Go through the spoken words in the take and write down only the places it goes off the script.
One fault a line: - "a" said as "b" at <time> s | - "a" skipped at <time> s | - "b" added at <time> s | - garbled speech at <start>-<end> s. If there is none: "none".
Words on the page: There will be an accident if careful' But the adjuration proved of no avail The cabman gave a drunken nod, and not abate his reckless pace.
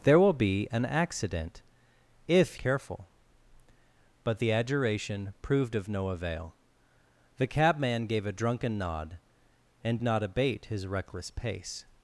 none